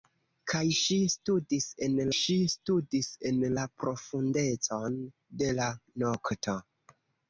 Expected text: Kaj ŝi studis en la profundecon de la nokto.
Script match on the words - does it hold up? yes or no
no